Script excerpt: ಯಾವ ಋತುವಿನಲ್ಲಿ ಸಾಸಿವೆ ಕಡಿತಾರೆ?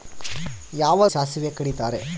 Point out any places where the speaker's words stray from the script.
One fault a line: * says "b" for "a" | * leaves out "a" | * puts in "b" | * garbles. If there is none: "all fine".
* leaves out "ಋತುವಿನಲ್ಲಿ"